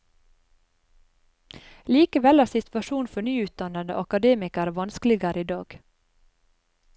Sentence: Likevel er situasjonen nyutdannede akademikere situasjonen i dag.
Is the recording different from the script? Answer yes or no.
yes